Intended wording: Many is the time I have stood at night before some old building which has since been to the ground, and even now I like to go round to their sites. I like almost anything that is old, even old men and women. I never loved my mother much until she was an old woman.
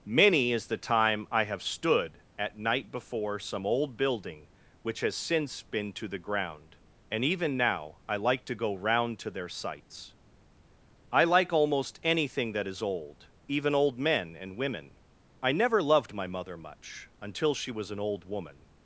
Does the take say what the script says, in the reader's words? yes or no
yes